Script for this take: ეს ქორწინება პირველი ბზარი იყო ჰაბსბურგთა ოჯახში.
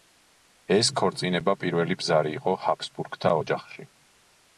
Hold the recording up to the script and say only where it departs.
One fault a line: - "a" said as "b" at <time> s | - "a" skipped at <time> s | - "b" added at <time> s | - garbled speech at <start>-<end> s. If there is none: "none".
none